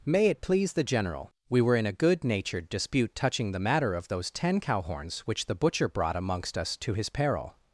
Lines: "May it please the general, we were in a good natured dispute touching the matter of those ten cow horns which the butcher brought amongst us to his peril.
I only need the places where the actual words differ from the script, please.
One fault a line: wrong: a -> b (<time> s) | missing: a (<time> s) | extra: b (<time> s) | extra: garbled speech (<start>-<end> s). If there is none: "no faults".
no faults